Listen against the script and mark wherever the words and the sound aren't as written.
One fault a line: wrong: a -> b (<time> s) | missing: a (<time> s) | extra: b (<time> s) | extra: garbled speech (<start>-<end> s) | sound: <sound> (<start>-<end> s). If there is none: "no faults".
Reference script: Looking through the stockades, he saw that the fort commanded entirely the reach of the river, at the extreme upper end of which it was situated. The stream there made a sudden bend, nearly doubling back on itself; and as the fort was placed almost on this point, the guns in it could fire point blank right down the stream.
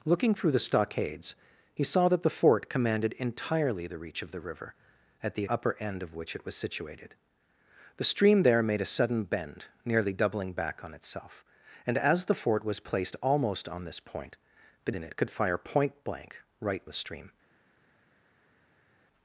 missing: extreme (5.5 s)
missing: guns (14.9 s)
missing: down (16.9 s)